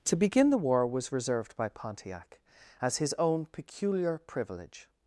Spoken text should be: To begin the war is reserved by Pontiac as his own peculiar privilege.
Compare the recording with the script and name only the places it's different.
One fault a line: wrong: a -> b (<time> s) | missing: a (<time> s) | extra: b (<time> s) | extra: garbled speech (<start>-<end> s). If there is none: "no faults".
wrong: is -> was (0.9 s)